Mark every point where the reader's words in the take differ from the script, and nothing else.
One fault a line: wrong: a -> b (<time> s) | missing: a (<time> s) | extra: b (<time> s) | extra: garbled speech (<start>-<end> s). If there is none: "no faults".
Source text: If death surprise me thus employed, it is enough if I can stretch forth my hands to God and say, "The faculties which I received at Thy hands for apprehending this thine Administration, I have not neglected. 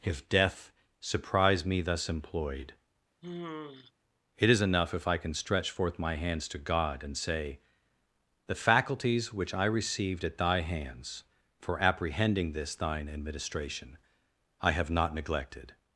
no faults